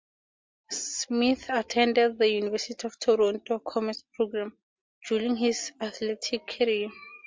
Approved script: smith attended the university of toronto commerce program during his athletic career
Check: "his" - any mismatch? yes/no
no